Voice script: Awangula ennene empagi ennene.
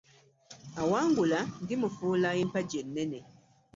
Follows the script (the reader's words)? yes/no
no